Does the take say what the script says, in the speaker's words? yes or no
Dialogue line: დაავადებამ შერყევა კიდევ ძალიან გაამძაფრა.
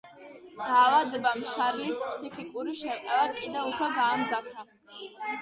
no